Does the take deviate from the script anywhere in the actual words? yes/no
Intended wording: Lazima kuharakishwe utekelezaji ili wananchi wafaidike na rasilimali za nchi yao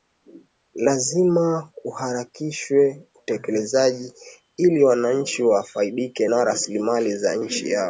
no